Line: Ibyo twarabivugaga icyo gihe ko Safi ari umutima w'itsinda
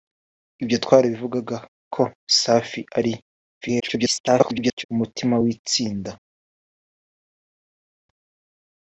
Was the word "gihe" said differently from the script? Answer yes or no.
yes